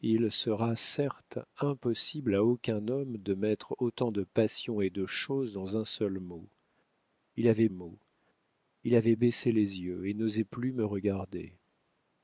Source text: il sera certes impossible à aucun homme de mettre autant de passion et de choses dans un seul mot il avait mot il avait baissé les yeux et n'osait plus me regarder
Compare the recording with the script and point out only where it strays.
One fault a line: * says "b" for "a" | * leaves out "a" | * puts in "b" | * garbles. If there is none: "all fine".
all fine